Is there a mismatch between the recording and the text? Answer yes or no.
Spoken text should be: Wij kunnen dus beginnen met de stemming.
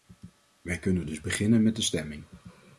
no